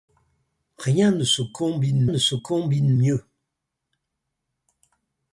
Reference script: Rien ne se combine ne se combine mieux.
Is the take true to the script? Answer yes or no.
yes